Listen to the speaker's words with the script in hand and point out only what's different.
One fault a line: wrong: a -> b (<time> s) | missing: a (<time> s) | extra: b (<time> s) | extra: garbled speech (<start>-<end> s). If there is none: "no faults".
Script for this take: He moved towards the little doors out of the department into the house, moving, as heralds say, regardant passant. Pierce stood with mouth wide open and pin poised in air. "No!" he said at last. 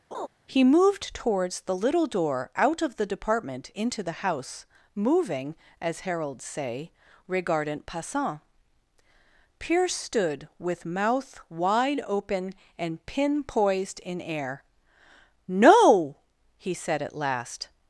wrong: doors -> door (2.1 s)